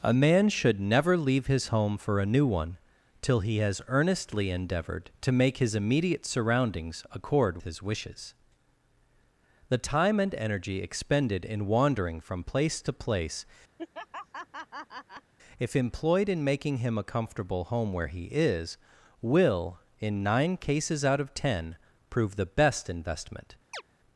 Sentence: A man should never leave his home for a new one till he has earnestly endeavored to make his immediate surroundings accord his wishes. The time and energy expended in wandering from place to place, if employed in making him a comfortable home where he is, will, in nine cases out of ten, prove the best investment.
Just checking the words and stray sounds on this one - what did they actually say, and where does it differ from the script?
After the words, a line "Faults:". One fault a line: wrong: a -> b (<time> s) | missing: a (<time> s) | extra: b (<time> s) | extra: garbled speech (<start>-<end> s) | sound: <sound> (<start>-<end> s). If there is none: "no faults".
A man should never leave his home for a new one till he has earnestly endeavored to make his immediate surroundings accord his wishes. The time and energy expended in wandering from place to place, if employed in making him a comfortable home where he is, will, in nine cases out of ten, prove the best investment.
Faults:
sound: laugh (13.8-15.3 s)
sound: chirp (23.7-23.8 s)